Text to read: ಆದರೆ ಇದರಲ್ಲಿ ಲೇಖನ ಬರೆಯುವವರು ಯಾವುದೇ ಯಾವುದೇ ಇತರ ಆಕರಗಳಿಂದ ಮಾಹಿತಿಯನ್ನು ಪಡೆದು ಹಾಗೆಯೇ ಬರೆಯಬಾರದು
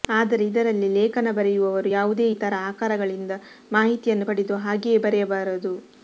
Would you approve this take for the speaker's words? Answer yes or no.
no